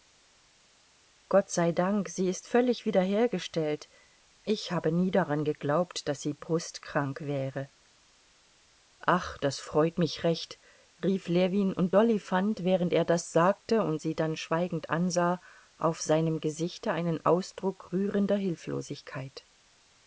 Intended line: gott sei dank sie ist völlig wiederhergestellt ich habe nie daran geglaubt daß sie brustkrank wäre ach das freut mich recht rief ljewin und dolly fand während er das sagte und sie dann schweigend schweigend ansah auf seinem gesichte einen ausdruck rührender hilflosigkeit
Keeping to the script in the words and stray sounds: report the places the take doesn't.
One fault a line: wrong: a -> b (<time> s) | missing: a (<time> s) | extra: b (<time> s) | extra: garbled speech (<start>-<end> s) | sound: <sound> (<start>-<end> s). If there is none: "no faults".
missing: schweigend (14.9 s)